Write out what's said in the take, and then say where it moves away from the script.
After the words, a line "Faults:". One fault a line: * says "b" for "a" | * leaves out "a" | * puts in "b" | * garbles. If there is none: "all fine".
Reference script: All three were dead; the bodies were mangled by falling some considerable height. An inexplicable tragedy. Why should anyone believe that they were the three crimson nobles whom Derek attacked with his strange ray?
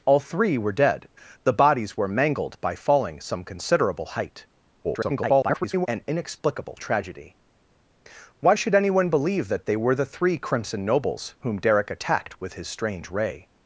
All three were dead; the bodies were mangled by falling some considerable height. [garbled] An inexplicable tragedy. Why should anyone believe that they were the three crimson nobles whom Derek attacked with his strange ray?
Faults:
* garbles